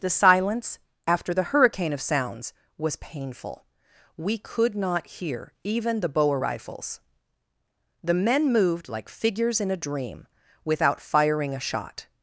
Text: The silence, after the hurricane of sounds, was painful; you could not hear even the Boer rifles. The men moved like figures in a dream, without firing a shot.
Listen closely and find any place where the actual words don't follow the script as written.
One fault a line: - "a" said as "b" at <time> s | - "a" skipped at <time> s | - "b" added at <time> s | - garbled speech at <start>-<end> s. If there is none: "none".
- "you" said as "we" at 4.2 s